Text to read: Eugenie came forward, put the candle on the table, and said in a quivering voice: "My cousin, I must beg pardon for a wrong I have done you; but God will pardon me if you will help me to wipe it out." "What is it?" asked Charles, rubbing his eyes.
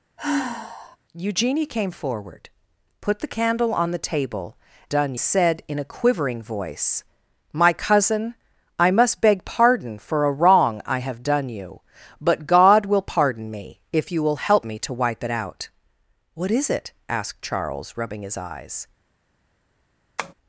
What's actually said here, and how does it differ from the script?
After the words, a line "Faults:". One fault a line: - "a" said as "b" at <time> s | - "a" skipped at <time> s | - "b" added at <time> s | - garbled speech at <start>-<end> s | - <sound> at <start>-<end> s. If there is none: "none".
Eugenie came forward, put the candle on the table, done said in a quivering voice: "My cousin, I must beg pardon for a wrong I have done you; but God will pardon me if you will help me to wipe it out." "What is it?" asked Charles, rubbing his eyes.
Faults:
- sigh at 0.2-1.0 s
- "and" said as "done" at 4.9 s
- tap at 20.2-20.3 s